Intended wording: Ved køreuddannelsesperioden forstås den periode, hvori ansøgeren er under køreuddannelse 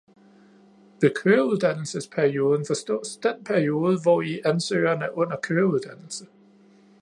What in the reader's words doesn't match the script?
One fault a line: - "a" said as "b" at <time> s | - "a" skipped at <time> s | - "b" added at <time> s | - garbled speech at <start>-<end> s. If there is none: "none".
none